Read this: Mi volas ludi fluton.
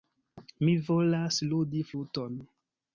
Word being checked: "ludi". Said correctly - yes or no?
yes